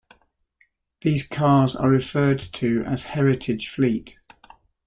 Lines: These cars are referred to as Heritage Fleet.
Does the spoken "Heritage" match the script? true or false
true